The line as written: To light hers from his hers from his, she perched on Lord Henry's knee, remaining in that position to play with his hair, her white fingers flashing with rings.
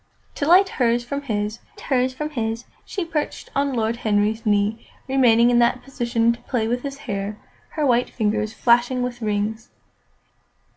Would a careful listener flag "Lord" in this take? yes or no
no